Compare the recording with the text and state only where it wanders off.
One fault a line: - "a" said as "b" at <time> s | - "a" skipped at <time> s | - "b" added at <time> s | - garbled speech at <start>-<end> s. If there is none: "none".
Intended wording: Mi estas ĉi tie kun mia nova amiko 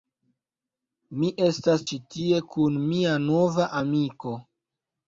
none